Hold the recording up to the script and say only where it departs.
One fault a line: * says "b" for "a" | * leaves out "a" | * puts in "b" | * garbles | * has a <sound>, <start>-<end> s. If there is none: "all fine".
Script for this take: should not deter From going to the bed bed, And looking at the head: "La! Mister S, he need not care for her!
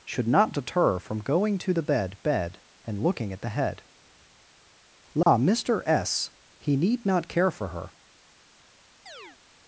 * has a dropout, 5.2-5.3 s
* has a chirp, 9.1-9.4 s